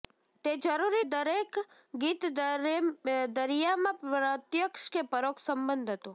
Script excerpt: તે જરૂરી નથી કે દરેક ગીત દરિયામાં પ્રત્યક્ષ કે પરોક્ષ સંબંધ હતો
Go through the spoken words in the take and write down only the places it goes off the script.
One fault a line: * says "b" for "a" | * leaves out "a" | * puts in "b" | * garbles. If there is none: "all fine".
* leaves out "નથી કે"